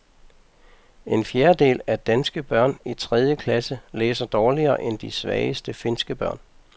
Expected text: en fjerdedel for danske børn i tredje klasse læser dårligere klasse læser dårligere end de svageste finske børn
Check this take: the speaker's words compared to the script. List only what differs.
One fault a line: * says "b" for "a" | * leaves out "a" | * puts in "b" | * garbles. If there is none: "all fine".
* says "af" for "for"
* leaves out "klasse læser dårligere"